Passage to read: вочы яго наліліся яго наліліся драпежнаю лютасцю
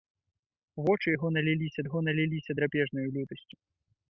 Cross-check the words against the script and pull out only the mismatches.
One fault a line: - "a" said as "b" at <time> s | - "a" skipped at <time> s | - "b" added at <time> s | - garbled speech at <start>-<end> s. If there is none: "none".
none